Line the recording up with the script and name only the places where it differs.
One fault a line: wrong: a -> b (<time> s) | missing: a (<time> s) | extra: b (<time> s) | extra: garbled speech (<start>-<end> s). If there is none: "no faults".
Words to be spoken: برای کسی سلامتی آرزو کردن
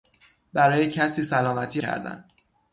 missing: آرزو (1.8 s)